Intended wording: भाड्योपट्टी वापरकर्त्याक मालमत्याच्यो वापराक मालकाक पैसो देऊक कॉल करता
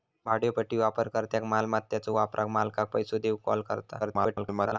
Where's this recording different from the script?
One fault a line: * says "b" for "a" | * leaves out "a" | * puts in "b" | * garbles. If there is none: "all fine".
* garbles